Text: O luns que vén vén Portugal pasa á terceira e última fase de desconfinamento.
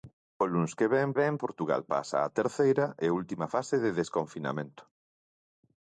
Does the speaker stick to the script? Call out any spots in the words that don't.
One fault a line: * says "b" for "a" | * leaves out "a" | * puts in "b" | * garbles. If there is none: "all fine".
all fine